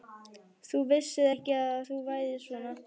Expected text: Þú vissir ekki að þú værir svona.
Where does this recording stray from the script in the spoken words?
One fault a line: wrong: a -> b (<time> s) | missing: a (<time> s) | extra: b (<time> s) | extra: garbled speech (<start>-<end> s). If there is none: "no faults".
no faults